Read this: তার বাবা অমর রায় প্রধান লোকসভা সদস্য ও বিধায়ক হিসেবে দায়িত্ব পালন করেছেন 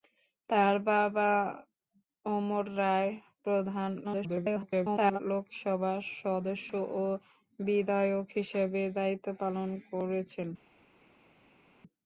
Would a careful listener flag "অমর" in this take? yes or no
no